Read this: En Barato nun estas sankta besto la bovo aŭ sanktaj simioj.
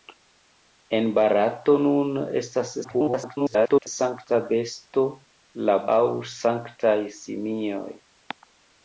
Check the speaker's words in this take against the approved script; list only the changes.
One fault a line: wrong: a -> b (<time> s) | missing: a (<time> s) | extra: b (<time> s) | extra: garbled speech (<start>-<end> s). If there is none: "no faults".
extra: garbled speech (2.8-3.9 s)
missing: bovo (5.7 s)